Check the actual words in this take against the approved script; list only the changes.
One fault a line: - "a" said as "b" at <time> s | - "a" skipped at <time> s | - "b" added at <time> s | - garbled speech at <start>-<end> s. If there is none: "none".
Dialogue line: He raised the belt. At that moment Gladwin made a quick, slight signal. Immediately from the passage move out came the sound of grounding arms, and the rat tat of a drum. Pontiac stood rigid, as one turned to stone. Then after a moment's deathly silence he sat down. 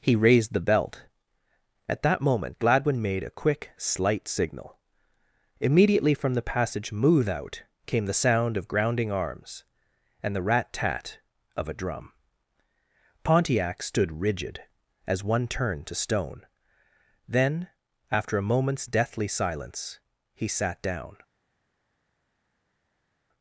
none